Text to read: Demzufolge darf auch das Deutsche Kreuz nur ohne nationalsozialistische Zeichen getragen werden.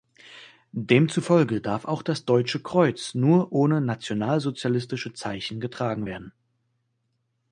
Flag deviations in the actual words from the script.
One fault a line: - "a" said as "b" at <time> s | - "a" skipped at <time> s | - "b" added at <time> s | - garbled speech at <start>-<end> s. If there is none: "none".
none